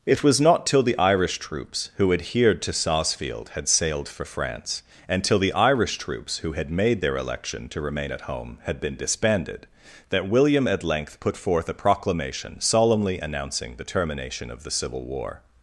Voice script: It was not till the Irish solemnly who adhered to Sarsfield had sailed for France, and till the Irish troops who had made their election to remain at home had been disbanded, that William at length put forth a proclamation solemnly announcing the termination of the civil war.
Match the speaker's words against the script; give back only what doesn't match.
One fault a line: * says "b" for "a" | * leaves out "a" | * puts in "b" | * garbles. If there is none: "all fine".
* says "troops" for "solemnly"